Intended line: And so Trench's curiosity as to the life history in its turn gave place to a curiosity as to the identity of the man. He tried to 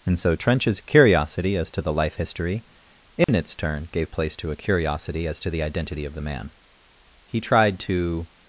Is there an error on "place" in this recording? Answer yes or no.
no